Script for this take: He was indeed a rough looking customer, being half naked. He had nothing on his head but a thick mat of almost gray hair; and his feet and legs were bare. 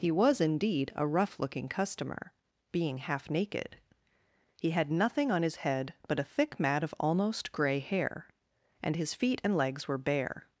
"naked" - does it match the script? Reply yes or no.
yes